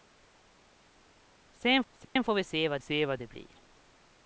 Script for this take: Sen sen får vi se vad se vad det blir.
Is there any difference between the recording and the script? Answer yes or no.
no